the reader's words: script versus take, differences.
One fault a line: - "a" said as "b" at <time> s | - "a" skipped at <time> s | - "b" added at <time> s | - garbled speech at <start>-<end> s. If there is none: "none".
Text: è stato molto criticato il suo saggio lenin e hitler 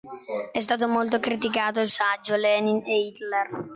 - "suo" skipped at 1.9 s